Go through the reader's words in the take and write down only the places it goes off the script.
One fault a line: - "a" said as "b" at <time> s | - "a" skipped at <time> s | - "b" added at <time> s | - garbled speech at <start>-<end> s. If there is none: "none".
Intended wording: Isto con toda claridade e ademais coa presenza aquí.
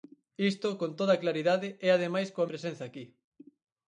none